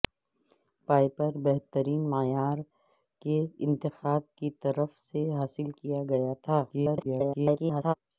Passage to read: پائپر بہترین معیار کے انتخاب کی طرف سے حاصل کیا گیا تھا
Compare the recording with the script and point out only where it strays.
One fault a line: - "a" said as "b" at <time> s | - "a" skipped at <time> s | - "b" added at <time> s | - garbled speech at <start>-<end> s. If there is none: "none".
- garbled speech at 6.7-7.9 s